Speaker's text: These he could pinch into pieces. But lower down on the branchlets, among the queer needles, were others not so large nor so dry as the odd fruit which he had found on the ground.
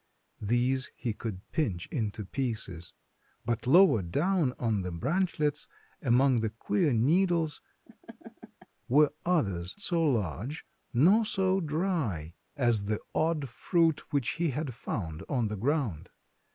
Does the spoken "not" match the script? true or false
false